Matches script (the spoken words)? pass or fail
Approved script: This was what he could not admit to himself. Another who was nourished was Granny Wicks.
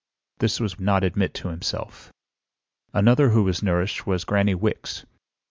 fail